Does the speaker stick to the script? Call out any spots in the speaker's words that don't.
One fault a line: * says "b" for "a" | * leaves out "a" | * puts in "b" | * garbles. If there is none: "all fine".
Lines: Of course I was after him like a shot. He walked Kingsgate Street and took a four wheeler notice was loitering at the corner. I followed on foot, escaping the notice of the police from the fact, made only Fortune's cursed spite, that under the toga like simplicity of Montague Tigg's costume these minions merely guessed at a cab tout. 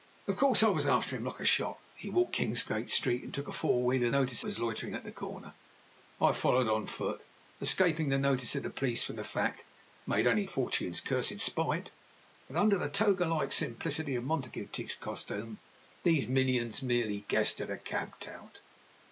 all fine